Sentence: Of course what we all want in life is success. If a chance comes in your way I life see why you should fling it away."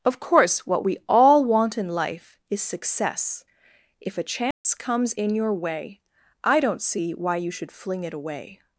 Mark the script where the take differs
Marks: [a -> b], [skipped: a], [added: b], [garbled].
Of course what we all want in life is success. If a chance comes in your way I [life -> don't] see why you should fling it away."